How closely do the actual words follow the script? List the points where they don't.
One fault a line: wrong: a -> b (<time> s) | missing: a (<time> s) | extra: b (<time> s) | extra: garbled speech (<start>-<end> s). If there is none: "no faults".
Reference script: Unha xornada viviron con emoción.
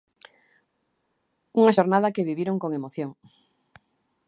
extra: que (2.2 s)